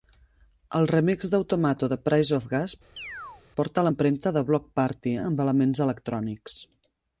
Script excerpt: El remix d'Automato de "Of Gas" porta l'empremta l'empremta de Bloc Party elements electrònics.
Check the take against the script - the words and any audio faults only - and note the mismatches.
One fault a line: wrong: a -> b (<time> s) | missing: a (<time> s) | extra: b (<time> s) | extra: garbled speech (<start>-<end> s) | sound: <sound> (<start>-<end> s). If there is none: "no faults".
extra: Price (2.1 s)
sound: chirp (3.0-3.4 s)
missing: l'empremta (4.4 s)
extra: amb (5.3 s)